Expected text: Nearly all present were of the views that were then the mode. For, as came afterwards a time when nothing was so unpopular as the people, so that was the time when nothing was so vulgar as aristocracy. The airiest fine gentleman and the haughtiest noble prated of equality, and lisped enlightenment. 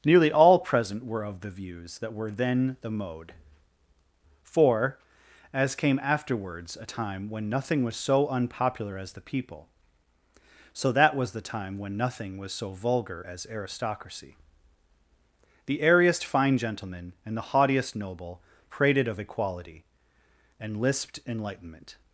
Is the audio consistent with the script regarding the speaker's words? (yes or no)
yes